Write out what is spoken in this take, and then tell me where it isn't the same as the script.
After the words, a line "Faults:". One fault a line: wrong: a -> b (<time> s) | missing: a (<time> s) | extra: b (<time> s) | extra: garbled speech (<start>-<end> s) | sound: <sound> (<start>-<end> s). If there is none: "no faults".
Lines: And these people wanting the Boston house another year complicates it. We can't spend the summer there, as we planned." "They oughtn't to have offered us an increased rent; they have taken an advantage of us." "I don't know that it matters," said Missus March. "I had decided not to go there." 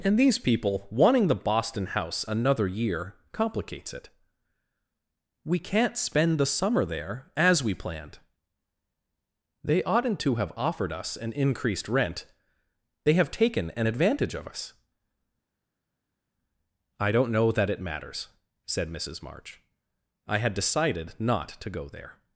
And these people wanting the Boston house another year complicates it. We can't spend the summer there, as we planned." "They oughtn't to have offered us an increased rent; they have taken an advantage of us." "I don't know that it matters," said Missus March. "I had decided not to go there."
Faults:
no faults